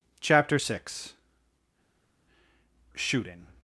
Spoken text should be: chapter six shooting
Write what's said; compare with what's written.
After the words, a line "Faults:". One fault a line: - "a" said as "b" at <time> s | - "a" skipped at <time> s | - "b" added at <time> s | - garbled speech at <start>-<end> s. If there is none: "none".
chapter six shooting
Faults:
none